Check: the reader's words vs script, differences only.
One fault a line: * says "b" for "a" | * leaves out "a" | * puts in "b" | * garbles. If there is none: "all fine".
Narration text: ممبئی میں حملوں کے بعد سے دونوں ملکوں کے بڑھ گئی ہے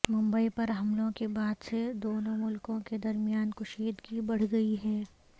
* says "پر" for "میں"
* puts in "درمیان کشیدگی"